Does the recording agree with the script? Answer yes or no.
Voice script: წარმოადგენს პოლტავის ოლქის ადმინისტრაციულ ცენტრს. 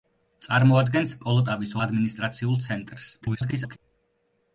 no